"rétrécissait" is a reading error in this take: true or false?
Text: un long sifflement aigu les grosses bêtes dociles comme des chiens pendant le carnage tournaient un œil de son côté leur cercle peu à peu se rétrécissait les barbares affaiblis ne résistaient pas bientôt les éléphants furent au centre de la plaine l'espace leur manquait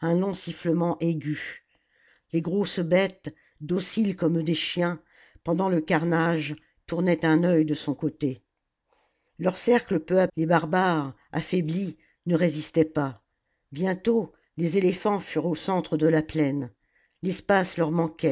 true